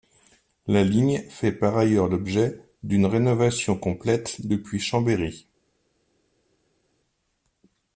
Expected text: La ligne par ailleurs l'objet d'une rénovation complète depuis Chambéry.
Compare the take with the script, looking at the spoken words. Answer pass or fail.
fail